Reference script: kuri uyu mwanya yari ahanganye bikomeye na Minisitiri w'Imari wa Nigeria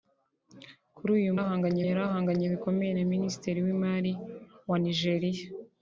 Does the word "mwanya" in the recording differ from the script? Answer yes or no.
yes